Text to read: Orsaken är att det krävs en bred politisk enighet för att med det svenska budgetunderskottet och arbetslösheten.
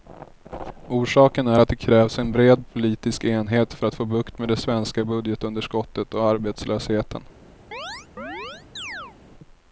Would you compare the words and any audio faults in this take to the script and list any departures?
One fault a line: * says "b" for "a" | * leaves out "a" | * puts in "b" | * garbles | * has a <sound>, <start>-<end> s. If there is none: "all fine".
* puts in "få bukt"
* has a chirp, 7.7-9.2 s